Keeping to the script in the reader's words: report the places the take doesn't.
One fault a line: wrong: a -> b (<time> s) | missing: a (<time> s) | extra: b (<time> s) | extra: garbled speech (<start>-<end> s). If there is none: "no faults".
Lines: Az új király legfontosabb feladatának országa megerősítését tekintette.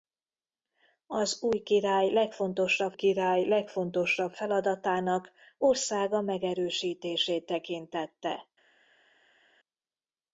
extra: király legfontosabb (2.9 s)